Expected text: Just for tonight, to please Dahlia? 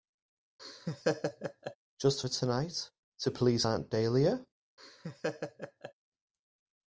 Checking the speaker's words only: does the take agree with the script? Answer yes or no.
no